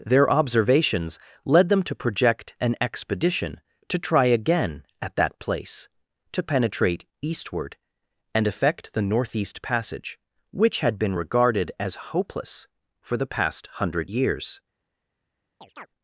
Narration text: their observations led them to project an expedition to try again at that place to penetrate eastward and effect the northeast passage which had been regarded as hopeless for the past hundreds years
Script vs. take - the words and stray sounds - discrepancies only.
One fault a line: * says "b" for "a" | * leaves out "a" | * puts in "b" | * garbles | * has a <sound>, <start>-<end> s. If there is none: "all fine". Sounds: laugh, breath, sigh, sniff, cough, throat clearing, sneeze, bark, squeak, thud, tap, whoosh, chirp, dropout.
* says "hundred" for "hundreds"
* has a chirp, 15.6-15.9 s